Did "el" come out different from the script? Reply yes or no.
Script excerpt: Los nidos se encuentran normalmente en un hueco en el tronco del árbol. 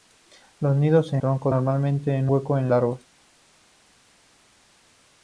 yes